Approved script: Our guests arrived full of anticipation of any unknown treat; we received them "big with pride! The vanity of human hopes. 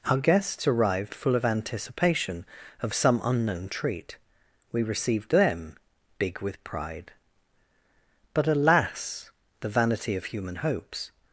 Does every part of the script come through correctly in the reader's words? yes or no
no